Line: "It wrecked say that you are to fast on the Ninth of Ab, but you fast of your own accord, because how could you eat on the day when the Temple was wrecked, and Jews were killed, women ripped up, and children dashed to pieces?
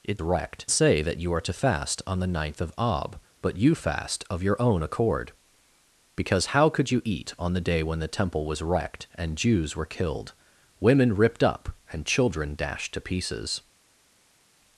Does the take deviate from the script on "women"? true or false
false